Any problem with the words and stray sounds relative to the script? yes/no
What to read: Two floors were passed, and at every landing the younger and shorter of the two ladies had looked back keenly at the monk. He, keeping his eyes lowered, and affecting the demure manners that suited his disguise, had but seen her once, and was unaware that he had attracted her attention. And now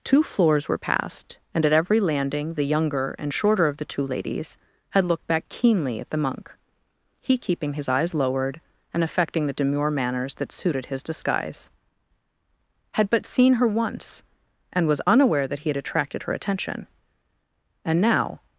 no